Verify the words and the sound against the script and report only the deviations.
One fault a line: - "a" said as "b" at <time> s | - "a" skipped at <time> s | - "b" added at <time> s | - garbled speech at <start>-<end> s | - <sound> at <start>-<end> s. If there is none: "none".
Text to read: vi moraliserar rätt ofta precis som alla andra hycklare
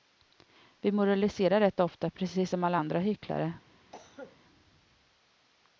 - cough at 3.9-4.4 s